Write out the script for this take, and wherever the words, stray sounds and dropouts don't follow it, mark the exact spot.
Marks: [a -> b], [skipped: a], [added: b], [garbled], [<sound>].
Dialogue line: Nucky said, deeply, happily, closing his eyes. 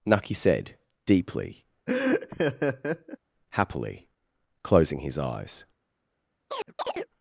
Nucky said, deeply, [laugh] happily, closing his eyes. [chirp]